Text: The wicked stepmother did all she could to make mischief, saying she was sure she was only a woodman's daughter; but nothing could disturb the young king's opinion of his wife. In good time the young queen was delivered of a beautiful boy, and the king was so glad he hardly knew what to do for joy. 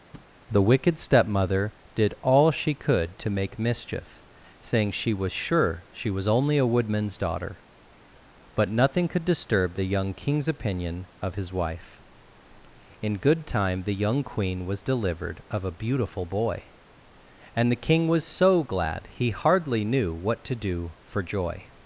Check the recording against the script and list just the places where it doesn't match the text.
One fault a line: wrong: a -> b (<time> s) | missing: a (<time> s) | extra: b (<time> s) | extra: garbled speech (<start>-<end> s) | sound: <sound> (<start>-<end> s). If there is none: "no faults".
sound: thud (0.1-0.4 s)